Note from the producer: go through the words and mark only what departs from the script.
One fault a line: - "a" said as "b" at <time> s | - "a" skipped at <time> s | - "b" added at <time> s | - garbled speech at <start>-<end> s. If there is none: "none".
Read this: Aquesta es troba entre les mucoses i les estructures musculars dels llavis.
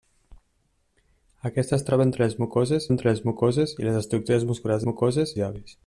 - "entre les mucoses" added at 2.9 s
- "dels" said as "mucoses" at 4.8 s